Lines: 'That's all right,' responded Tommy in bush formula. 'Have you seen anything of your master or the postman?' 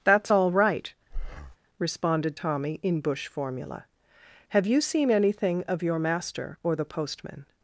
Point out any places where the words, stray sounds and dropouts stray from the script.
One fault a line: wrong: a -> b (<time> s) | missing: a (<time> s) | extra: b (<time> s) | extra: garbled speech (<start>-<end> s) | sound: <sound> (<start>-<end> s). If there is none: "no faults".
sound: breath (1.1-1.6 s)